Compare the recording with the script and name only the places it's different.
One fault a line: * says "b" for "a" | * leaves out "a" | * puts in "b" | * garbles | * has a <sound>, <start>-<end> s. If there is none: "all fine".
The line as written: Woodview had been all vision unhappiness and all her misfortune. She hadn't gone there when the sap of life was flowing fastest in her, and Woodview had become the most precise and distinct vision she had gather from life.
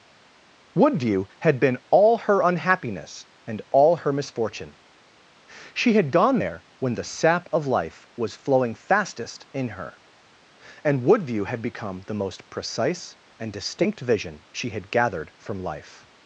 * says "her" for "vision"
* says "had" for "hadn't"
* says "gathered" for "gather"